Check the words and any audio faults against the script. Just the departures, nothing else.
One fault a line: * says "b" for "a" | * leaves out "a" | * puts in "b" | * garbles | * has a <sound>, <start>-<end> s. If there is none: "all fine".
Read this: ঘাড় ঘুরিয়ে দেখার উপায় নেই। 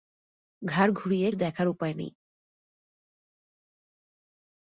all fine